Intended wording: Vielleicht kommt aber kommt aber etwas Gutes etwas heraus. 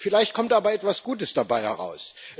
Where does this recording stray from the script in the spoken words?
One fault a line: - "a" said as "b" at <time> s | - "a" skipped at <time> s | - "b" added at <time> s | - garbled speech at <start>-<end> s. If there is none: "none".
- "kommt aber" skipped at 0.7 s
- "etwas" said as "dabei" at 1.4 s